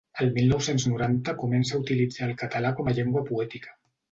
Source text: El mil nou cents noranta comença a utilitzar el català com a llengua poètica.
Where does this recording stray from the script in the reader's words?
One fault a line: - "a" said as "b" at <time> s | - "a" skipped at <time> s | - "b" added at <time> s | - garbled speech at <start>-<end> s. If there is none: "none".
none